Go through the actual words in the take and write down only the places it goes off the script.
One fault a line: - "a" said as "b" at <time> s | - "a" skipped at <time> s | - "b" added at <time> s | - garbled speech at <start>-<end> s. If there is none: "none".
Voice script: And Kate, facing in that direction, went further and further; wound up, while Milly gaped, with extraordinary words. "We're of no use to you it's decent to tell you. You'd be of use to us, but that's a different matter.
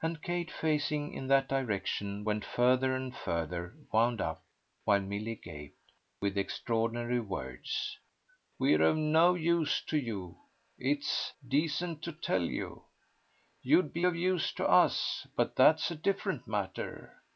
none